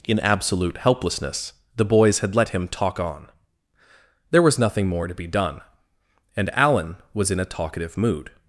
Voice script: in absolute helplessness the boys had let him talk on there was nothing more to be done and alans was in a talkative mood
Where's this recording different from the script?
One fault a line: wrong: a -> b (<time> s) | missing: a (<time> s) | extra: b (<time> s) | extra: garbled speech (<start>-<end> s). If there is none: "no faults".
wrong: alans -> alan (6.5 s)